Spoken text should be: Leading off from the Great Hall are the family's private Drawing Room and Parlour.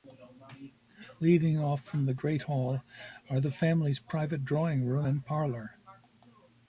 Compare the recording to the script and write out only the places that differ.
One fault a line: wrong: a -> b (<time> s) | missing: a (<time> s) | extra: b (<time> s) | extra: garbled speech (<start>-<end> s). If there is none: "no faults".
no faults